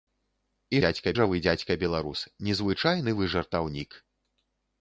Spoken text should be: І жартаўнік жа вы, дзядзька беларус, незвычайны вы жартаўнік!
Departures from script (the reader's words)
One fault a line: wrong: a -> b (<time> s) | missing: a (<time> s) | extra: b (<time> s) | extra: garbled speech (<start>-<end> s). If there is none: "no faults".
wrong: жартаўнік -> дзядзька (0.8 s)